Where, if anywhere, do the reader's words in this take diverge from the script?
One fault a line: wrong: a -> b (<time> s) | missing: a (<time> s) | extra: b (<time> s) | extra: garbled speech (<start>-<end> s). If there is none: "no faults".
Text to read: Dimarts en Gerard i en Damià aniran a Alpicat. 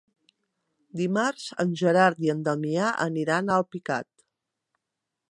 no faults